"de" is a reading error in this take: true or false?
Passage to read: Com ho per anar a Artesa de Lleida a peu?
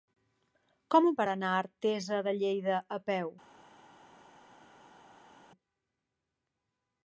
false